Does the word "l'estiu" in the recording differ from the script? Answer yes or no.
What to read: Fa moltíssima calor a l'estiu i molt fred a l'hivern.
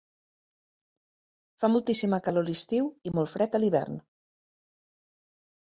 no